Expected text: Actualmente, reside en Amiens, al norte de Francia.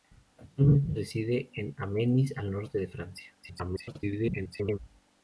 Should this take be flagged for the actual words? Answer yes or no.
yes